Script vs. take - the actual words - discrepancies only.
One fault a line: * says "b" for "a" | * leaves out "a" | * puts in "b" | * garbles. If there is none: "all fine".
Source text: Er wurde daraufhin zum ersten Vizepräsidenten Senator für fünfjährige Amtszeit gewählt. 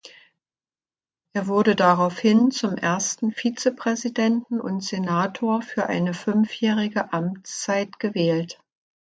* puts in "und"
* puts in "eine"